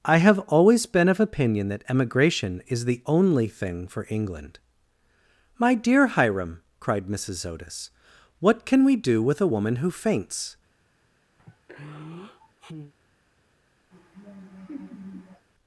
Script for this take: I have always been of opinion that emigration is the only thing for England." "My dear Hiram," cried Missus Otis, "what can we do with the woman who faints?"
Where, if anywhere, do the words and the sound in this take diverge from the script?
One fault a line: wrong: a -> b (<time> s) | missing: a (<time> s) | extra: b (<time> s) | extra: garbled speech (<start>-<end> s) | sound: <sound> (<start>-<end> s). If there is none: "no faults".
wrong: the -> a (9.4 s)
sound: sigh (11.4-12.9 s)
sound: laugh (13.9-15.5 s)